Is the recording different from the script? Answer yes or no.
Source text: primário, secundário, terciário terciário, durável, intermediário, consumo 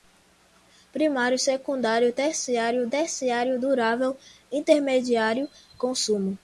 no